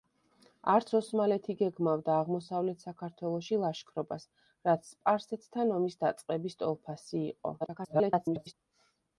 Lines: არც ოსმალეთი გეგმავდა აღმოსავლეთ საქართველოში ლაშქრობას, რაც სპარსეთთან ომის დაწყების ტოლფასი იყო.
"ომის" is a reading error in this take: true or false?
false